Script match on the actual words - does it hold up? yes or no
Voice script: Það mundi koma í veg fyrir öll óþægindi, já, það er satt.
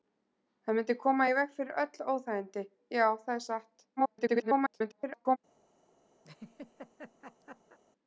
no